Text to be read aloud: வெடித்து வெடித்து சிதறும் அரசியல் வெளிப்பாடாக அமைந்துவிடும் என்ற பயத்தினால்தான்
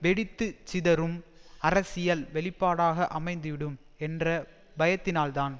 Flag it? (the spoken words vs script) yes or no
yes